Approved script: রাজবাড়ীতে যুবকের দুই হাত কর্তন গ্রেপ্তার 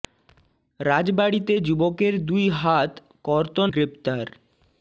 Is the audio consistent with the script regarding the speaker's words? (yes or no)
yes